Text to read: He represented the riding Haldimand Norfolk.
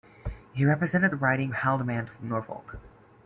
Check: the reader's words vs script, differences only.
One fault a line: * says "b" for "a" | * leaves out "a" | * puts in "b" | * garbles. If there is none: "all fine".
all fine